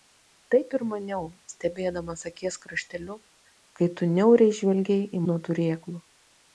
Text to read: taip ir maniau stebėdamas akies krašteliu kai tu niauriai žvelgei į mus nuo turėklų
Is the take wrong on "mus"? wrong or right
wrong